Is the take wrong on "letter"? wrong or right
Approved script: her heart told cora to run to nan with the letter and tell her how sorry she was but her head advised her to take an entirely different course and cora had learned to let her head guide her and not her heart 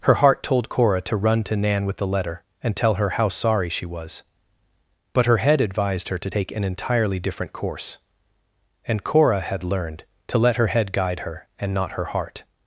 right